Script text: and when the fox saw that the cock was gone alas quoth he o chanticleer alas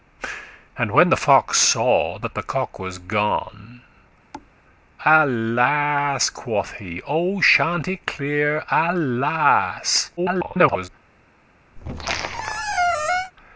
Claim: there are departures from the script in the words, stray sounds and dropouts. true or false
true